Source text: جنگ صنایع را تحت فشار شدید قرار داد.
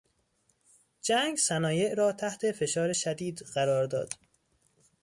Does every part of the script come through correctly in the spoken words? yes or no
yes